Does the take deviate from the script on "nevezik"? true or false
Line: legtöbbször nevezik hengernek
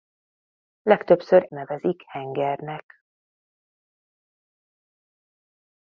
false